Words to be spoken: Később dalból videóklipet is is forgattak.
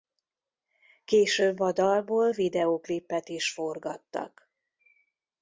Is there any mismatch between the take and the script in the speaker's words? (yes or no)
yes